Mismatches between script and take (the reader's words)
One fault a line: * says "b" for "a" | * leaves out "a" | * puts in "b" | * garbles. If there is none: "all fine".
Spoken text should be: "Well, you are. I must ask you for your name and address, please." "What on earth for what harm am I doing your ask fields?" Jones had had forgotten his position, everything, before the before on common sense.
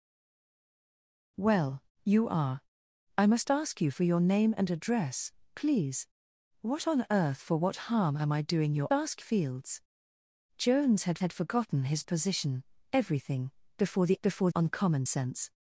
all fine